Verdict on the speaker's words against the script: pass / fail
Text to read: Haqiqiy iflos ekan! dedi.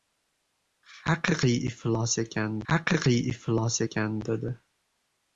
fail